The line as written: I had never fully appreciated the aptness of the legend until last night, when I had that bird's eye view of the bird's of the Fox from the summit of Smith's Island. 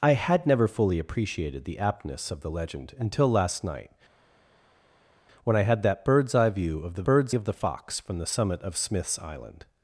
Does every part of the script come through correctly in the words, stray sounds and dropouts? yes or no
yes